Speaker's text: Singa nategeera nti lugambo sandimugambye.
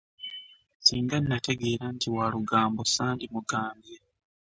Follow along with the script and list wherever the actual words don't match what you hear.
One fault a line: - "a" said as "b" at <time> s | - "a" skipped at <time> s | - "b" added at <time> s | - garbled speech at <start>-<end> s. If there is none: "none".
- "wa" added at 2.1 s